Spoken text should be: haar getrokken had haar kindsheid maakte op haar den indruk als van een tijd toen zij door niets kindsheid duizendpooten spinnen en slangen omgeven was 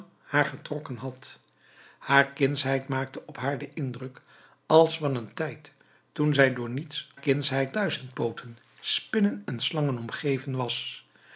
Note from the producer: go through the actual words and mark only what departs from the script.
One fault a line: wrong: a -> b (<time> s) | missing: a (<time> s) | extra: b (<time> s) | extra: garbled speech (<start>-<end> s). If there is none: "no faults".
no faults